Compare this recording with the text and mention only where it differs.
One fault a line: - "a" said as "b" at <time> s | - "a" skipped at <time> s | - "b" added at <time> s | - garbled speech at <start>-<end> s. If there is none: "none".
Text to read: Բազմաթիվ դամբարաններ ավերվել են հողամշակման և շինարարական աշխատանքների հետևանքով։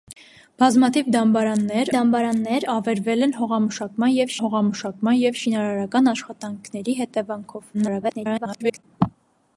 - "դամբարաններ" added at 1.9 s
- "հողամշակման և" added at 4.4 s
- garbled speech at 7.7-8.8 s